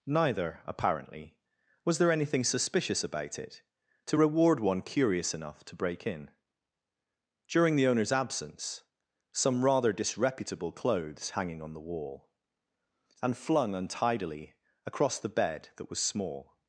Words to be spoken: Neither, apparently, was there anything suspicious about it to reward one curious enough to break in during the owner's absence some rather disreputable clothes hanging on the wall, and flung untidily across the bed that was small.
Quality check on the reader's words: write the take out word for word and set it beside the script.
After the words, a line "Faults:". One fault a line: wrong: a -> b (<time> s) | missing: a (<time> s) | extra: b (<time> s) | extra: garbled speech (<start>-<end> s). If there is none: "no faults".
Neither, apparently, was there anything suspicious about it to reward one curious enough to break in during the owner's absence some rather disreputable clothes hanging on the wall, and flung untidily across the bed that was small.
Faults:
no faults